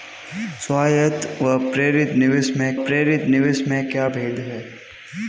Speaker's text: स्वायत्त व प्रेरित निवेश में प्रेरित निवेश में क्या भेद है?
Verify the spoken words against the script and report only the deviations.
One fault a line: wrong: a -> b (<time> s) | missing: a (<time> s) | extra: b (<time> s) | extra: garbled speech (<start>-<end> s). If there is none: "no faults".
no faults